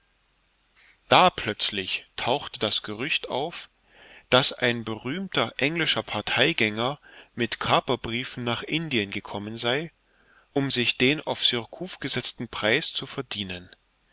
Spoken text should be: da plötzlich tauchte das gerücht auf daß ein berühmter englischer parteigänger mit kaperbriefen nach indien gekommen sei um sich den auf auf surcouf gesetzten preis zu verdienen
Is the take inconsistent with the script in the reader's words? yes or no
yes